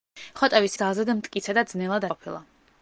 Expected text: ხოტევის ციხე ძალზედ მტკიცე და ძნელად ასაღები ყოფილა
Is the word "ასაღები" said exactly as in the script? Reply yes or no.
no